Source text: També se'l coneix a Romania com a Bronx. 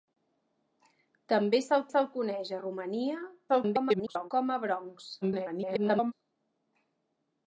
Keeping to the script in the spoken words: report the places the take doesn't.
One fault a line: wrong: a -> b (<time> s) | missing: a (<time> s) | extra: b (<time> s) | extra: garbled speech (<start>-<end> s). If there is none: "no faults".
extra: se'l (1.9 s)
extra: garbled speech (3.5-4.3 s)
extra: garbled speech (5.2-6.1 s)